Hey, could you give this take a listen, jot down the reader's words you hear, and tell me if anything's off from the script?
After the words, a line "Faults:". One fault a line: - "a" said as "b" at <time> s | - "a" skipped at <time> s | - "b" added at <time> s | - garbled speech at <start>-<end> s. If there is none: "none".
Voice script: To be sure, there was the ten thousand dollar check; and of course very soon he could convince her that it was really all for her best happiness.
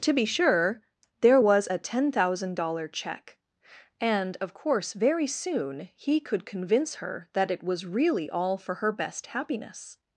To be sure, there was a ten thousand dollar check; and of course very soon he could convince her that it was really all for her best happiness.
Faults:
- "the" said as "a" at 1.7 s